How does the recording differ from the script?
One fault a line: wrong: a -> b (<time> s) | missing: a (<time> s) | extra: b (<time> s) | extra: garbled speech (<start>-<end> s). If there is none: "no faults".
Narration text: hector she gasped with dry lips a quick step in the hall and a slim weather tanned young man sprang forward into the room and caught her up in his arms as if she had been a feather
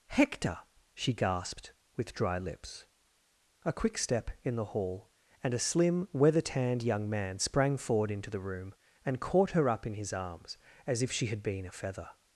no faults